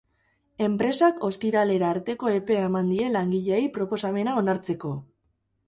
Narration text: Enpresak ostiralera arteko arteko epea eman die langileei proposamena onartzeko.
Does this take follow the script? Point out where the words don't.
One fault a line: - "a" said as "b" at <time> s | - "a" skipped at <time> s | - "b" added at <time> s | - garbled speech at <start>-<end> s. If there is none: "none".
- "arteko" skipped at 2.3 s